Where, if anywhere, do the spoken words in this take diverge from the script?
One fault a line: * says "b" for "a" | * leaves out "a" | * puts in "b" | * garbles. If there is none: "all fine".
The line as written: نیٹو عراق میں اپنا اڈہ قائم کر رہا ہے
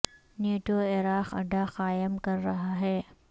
* leaves out "میں اپنا"